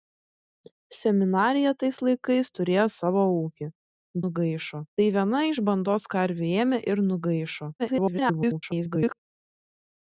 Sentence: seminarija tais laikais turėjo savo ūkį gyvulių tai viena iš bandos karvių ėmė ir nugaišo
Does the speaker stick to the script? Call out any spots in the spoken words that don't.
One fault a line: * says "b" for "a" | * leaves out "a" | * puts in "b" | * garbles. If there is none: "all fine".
* says "nugaišo" for "gyvulių"
* garbles